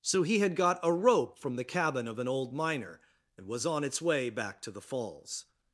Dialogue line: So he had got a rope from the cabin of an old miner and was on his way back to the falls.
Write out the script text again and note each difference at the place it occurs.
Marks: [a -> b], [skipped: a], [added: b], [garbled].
So he had got a rope from the cabin of an old miner and was on [his -> its] way back to the falls.